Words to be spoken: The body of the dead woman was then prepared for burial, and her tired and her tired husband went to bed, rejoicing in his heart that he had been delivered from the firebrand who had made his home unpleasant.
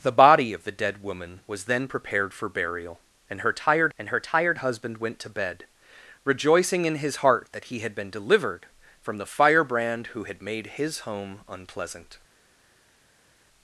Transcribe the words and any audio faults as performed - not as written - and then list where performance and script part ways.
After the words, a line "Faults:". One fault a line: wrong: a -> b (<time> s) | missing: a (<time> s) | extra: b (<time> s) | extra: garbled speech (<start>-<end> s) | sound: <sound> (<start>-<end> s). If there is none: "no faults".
The body of the dead woman was then prepared for burial, and her tired and her tired husband went to bed, rejoicing in his heart that he had been delivered from the firebrand who had made his home unpleasant.
Faults:
no faults